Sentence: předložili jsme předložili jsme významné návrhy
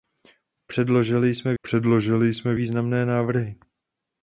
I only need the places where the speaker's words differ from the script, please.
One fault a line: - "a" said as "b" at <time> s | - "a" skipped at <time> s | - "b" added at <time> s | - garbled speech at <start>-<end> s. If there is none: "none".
none